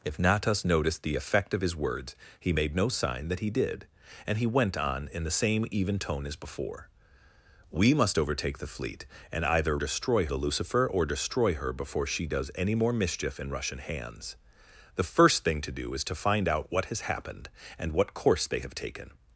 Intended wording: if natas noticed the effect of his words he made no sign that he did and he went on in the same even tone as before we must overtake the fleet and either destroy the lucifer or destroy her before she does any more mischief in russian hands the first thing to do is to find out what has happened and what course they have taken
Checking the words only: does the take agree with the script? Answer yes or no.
yes